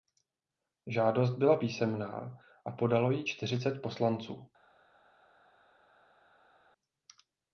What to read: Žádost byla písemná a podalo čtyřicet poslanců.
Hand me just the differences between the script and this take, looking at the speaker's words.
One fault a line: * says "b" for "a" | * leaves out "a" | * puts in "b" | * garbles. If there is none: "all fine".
* puts in "ji"